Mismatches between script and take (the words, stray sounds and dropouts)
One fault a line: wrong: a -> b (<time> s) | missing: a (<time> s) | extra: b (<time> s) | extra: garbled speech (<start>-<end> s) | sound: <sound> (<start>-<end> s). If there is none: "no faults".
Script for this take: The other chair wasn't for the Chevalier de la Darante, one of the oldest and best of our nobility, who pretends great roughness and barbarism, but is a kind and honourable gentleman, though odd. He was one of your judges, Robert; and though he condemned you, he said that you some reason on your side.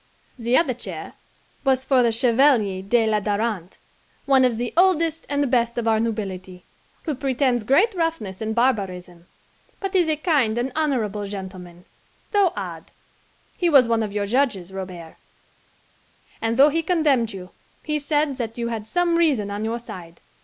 wrong: wasn't -> was (1.7 s)
extra: had (18.7 s)